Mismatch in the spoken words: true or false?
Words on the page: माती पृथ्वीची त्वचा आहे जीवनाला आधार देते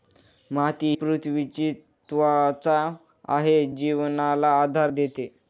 false